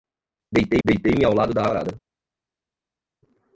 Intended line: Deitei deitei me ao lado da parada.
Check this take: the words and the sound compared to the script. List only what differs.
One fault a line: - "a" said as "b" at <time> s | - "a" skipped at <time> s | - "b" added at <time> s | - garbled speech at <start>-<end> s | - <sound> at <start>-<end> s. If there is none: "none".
none